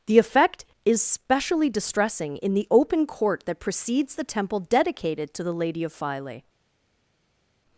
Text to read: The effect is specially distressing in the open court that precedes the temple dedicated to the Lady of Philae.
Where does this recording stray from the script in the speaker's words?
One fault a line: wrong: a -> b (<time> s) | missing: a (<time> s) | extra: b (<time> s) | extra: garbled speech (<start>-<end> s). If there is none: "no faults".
no faults